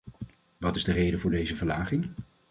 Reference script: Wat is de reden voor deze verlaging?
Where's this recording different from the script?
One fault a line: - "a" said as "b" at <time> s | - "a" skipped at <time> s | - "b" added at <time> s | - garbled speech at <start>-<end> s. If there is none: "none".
none